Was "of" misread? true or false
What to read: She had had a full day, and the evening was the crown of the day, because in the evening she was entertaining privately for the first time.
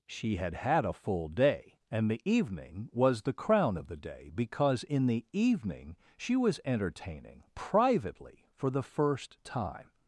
false